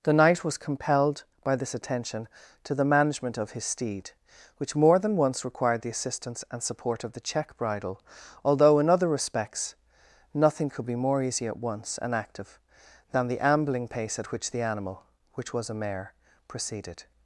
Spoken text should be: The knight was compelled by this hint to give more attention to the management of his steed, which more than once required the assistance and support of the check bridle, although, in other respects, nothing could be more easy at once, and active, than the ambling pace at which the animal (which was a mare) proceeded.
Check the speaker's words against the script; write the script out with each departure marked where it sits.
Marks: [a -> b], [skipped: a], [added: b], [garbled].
The knight was compelled by this [skipped: hint to give more] attention to the management of his steed, which more than once required the assistance and support of the check bridle, although, in other respects, nothing could be more easy at once, and active, than the ambling pace at which the animal (which was a mare) proceeded.